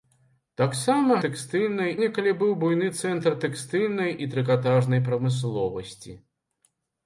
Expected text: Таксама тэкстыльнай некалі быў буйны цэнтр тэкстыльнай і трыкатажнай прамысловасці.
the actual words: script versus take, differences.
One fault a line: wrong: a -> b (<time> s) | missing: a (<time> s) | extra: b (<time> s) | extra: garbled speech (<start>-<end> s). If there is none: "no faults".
no faults